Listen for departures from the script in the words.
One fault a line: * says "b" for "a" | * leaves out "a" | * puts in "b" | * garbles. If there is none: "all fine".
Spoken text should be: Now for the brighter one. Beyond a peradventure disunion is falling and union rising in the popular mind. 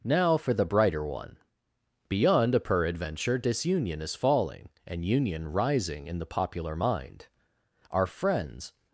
* puts in "Our friends"